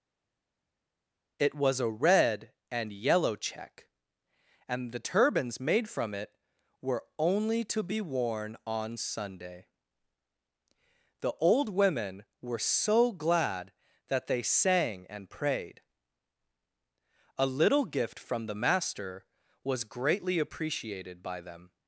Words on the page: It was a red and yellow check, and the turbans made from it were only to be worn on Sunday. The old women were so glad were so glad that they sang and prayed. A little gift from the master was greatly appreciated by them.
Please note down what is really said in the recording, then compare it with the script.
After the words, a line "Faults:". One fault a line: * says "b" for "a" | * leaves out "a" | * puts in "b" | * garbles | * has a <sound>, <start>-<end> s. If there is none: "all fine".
It was a red and yellow check, and the turbans made from it were only to be worn on Sunday. The old women were so glad that they sang and prayed. A little gift from the master was greatly appreciated by them.
Faults:
* leaves out "were so glad"